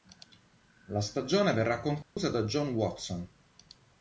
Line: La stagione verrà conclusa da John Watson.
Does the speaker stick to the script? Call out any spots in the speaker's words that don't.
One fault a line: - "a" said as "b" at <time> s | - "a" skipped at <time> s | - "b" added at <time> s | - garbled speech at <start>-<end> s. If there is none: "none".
none